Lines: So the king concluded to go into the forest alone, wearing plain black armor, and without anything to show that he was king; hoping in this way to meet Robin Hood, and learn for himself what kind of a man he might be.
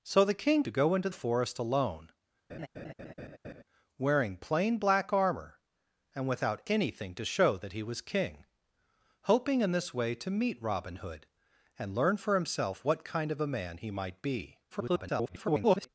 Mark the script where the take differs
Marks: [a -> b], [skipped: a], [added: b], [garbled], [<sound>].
So the king [skipped: concluded] to go into [skipped: the] forest alone, [laugh] wearing plain black armor, and without anything to show that he was king; hoping in this way to meet Robin Hood, and learn for himself what kind of a man he might be. [garbled]